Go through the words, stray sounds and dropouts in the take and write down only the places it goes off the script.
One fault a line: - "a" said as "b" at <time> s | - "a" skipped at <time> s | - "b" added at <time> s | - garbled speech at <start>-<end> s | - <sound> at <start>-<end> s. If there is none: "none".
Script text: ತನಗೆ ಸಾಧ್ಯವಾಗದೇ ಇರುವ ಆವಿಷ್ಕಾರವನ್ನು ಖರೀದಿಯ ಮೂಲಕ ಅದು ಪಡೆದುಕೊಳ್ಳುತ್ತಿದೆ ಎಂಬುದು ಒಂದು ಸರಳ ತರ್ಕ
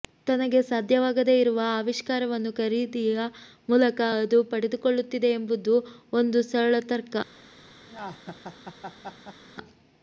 - laugh at 7.9-9.4 s